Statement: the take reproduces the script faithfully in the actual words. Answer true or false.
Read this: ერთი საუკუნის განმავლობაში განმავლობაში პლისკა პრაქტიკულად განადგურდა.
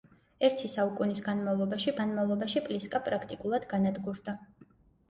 true